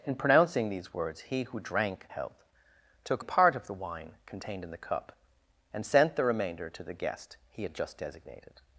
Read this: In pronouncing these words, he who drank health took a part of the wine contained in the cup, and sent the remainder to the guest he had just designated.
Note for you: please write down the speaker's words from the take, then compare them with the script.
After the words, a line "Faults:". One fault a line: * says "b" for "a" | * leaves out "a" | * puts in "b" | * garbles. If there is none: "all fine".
In pronouncing these words, he who drank health took a part of the wine contained in the cup, and sent the remainder to the guest he had just designated.
Faults:
all fine